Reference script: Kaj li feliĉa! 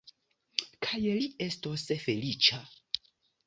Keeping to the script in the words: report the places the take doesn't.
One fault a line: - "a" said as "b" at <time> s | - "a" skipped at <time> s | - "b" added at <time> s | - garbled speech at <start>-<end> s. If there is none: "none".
- "estos" added at 1.5 s